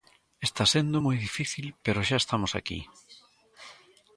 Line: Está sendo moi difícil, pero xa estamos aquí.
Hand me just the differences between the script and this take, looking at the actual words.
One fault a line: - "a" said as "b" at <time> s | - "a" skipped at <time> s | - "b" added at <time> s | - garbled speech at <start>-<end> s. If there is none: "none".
none